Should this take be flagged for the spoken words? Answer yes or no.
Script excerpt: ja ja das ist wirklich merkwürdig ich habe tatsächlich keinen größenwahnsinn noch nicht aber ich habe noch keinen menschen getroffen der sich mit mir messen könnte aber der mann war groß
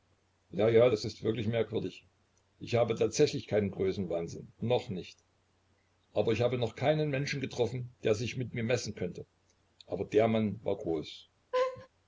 no